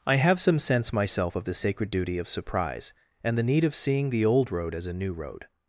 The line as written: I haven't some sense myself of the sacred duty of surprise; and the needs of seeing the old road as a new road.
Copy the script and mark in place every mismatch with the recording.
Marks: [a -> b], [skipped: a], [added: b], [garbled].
I [haven't -> have] some sense myself of the sacred duty of surprise; and the [needs -> need] of seeing the old road as a new road.